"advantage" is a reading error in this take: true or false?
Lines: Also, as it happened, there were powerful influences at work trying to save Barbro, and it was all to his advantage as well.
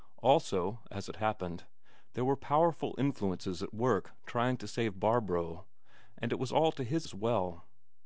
true